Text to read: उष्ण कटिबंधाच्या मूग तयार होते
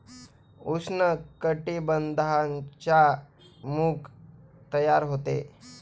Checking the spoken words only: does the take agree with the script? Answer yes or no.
yes